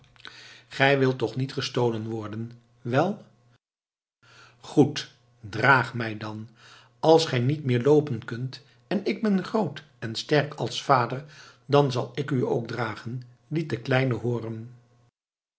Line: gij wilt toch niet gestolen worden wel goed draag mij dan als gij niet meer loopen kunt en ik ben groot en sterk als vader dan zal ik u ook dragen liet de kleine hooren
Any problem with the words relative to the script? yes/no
no